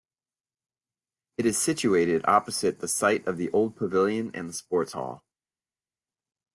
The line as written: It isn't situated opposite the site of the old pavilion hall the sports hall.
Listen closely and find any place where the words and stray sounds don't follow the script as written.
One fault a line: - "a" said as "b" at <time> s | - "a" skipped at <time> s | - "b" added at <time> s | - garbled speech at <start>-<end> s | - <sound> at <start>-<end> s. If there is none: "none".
- "isn't" said as "is" at 1.4 s
- "hall" said as "and" at 4.3 s